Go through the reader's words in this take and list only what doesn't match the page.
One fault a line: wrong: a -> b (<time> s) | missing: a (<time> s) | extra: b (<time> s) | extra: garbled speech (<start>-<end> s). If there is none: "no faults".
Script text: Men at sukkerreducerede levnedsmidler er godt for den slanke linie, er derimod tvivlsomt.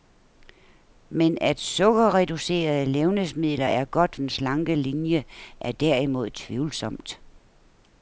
missing: for (4.2 s)